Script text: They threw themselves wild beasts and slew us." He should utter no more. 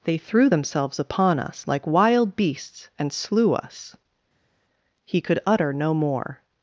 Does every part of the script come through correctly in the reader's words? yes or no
no